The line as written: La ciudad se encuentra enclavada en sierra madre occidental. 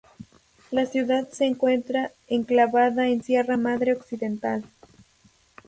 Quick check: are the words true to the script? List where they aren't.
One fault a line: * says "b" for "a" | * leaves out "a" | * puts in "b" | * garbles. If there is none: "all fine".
all fine